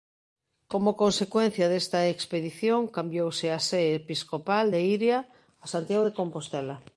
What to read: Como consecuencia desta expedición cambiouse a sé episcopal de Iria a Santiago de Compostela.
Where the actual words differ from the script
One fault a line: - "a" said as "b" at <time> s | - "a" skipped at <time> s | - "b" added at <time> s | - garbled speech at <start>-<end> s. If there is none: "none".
none